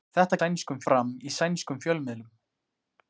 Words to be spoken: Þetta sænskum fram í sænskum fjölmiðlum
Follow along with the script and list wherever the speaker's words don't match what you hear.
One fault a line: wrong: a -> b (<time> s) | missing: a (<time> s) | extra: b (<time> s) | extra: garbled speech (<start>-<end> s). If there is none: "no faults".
no faults